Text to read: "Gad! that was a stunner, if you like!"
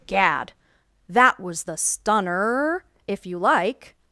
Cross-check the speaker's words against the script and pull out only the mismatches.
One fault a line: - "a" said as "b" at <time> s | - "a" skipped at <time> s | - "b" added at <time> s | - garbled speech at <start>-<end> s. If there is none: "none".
- "a" said as "the" at 1.6 s